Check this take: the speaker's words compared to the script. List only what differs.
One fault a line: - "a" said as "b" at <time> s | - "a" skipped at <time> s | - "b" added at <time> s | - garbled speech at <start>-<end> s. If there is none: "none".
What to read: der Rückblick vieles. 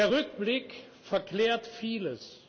- "verklärt" added at 1.0 s